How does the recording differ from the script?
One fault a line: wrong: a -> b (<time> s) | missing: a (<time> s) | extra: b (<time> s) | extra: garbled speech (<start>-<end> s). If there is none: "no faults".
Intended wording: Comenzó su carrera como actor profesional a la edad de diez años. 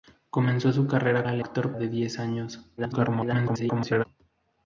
missing: como actor profesional (1.3 s)
wrong: edad -> actor (1.4 s)
extra: garbled speech (2.8-4.0 s)